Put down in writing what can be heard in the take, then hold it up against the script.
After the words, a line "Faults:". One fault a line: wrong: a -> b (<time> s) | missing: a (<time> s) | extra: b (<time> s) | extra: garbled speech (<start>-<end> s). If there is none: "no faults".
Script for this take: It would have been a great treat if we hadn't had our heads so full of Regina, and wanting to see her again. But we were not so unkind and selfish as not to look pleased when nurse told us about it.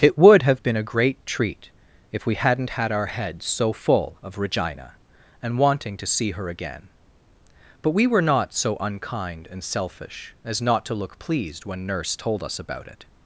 It would have been a great treat if we hadn't had our heads so full of Regina, and wanting to see her again. But we were not so unkind and selfish as not to look pleased when nurse told us about it.
Faults:
no faults